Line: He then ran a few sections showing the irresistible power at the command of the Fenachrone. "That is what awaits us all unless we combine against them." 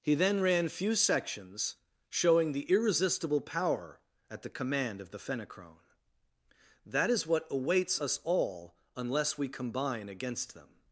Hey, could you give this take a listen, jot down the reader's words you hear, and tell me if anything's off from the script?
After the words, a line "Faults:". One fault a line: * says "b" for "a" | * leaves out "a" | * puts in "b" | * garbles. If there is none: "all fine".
He then ran few sections showing the irresistible power at the command of the Fenachrone. "That is what awaits us all unless we combine against them."
Faults:
* leaves out "a"